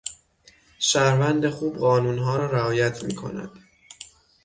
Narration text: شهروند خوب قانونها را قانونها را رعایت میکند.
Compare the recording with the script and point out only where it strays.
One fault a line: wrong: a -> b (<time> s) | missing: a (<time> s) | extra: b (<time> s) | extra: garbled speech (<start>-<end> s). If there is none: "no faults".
missing: قانونها را (2.5 s)